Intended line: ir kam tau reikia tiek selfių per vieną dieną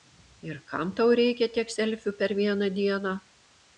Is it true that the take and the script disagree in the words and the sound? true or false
false